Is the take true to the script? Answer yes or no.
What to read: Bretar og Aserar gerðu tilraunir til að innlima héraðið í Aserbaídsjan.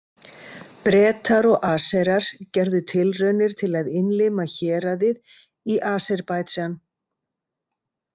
yes